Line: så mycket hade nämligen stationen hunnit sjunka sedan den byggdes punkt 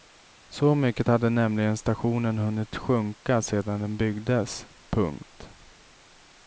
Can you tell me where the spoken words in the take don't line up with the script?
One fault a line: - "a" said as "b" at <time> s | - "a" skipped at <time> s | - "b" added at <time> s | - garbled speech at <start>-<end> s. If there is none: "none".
none